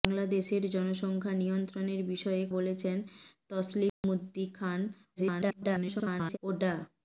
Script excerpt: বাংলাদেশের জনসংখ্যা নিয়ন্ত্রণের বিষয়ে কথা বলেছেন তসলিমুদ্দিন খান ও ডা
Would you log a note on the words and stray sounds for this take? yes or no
yes